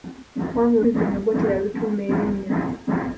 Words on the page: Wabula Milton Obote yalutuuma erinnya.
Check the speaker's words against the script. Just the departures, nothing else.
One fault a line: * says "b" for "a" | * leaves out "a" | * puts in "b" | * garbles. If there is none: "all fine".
all fine